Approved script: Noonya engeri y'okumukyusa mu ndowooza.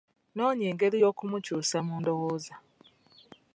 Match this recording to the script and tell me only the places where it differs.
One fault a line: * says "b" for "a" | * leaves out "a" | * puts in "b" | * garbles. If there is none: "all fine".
all fine